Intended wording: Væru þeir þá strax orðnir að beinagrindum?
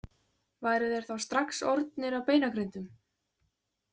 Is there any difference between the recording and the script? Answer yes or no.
no